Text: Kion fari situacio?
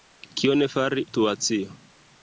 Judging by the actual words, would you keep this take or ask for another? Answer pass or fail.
pass